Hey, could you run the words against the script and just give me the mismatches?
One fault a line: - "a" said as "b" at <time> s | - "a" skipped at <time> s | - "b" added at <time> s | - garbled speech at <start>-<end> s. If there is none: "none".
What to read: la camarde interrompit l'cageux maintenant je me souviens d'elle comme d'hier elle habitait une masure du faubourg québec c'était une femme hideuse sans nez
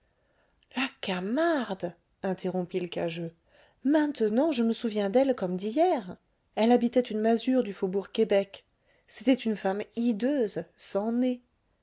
none